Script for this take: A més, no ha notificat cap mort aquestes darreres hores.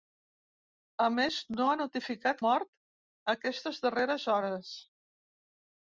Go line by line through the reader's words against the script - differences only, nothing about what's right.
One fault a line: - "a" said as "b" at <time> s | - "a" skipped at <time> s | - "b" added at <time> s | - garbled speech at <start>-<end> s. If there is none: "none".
- "cap" skipped at 2.4 s